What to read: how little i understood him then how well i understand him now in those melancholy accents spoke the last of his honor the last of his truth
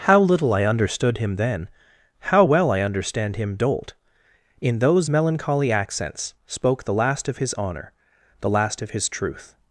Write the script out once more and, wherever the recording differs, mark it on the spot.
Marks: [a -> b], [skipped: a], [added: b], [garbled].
how little i understood him then how well i understand him [now -> dolt] in those melancholy accents spoke the last of his honor the last of his truth